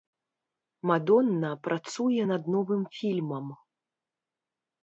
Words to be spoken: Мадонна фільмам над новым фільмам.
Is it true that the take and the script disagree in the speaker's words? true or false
true